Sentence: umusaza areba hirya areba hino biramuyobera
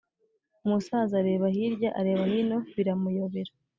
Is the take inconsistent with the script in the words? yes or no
no